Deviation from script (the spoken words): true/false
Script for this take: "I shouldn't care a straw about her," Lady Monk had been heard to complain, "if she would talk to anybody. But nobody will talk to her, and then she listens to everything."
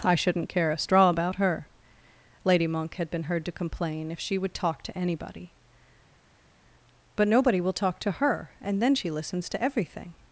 false